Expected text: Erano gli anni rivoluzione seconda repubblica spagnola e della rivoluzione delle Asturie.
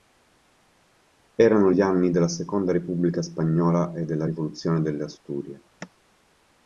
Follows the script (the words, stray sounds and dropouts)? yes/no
no